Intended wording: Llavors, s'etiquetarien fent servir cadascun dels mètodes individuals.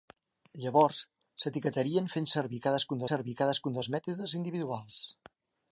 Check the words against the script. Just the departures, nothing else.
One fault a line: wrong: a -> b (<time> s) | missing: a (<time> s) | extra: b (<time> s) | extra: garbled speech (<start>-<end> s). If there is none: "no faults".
extra: servir cadascun (3.1 s)